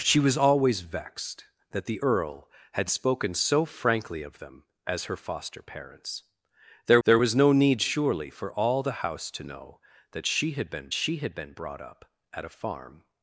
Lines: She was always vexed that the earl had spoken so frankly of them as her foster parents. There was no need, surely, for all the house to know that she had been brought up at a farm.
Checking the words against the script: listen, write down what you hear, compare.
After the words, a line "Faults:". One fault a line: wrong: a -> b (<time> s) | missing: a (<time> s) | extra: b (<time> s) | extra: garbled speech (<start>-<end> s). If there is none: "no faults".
She was always vexed that the earl had spoken so frankly of them as her foster parents. There there was no need, surely, for all the house to know that she had been she had been brought up at a farm.
Faults:
extra: there (7.0 s)
extra: she had been (10.9 s)